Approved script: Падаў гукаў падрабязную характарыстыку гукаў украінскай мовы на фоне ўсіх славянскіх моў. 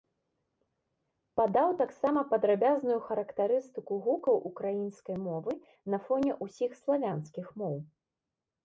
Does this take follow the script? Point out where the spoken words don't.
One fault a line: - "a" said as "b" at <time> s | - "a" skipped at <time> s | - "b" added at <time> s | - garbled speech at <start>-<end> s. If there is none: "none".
- "гукаў" said as "таксама" at 1.8 s